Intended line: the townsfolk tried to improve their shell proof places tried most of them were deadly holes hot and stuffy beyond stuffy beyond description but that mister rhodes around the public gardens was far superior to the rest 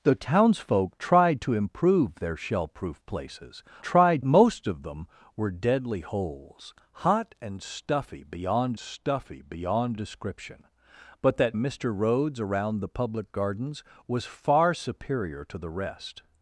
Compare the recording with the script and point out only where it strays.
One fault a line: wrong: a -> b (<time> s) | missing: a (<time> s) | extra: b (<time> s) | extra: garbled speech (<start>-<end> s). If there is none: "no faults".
no faults